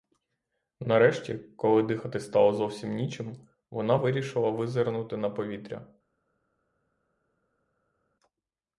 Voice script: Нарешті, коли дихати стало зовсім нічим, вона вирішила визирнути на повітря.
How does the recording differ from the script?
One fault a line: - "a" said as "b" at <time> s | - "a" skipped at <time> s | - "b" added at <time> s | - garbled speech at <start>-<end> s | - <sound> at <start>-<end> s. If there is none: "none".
none